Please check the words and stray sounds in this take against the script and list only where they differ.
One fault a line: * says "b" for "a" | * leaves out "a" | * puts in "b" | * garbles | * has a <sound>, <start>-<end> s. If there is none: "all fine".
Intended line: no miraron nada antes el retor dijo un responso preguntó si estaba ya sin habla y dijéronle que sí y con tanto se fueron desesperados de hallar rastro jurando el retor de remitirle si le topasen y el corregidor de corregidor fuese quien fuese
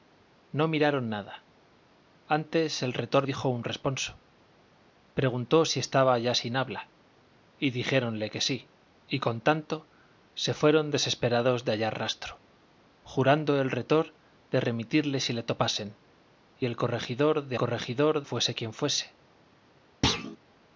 * has a thud, 20.0-20.4 s